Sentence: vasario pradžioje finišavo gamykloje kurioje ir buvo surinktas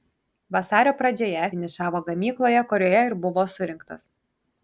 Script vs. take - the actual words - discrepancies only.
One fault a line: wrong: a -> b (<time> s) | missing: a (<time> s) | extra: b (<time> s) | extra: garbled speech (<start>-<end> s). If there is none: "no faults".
no faults